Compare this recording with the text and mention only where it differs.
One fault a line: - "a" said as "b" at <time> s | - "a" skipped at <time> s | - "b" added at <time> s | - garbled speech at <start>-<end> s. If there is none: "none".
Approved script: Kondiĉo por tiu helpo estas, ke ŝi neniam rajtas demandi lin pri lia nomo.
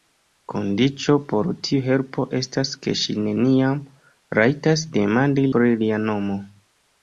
- "lin" skipped at 5.5 s